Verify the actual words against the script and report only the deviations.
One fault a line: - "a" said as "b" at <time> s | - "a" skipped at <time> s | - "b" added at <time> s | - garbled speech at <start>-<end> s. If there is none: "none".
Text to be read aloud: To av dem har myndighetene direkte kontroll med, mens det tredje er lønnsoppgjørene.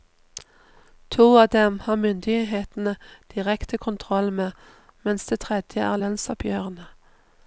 none